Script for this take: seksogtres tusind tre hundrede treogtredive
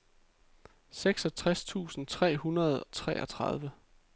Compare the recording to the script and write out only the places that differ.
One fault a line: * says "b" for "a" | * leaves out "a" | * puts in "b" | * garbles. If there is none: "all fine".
all fine